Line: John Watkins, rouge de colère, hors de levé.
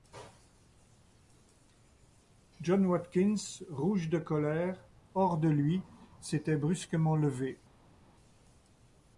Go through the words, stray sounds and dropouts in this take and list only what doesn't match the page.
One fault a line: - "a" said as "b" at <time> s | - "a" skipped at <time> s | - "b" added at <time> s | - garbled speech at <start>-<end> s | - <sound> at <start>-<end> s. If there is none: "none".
- "lui s'était brusquement" added at 5.5 s